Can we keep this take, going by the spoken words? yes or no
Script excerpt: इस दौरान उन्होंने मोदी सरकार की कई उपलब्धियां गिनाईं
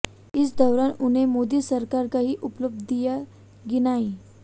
no